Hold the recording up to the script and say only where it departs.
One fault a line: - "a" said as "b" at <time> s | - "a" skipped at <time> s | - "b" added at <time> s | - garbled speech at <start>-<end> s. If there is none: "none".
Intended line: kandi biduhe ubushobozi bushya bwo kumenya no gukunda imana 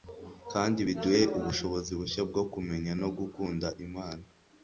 none